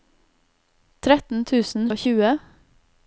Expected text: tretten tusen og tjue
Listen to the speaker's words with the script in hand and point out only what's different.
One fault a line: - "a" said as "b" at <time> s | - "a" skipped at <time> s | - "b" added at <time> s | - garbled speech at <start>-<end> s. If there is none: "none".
none